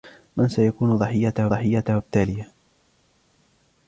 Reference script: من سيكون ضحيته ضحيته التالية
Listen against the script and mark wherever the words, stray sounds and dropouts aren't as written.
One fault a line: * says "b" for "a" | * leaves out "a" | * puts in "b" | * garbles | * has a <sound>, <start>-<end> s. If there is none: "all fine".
all fine